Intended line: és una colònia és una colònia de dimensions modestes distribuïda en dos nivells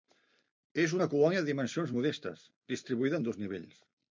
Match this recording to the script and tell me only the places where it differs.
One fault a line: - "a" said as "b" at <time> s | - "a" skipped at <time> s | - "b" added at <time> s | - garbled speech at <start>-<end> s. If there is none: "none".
- "és una colònia" skipped at 1.4 s